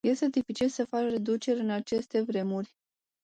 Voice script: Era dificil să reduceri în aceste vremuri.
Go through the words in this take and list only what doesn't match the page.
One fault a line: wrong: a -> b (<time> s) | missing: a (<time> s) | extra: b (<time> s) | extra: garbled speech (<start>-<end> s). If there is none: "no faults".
wrong: Era -> Este (0.0 s)
extra: faci (0.8 s)